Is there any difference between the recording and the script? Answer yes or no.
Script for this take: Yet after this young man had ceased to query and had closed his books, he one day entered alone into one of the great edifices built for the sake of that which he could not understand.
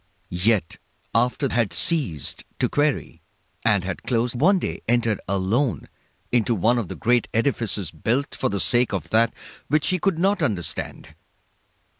yes